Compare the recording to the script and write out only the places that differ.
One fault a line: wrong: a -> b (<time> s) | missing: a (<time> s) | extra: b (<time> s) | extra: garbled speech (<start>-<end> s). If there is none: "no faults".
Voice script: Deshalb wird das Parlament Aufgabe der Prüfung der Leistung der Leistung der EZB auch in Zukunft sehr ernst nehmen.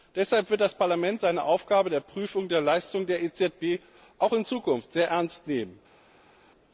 extra: seine (1.2 s)
missing: Leistung der (3.2 s)